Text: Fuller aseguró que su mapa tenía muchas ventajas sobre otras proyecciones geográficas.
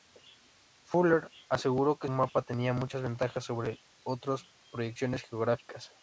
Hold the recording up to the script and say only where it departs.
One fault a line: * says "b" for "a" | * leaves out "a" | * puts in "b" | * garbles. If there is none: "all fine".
* leaves out "su"